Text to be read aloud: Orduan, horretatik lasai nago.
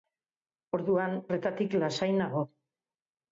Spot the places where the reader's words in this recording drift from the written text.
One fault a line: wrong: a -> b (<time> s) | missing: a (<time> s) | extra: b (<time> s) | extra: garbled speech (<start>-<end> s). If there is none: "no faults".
no faults